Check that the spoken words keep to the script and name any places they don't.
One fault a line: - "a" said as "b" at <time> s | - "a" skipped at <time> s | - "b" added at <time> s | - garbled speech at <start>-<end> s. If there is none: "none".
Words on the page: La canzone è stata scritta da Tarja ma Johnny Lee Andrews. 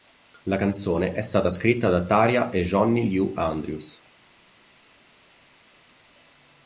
- "ma" said as "e" at 2.5 s